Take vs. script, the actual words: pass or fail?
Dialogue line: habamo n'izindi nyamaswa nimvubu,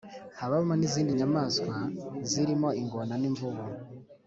fail